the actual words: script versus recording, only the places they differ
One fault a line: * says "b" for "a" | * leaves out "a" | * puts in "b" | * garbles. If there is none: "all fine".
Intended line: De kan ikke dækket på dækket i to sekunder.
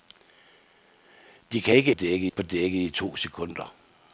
all fine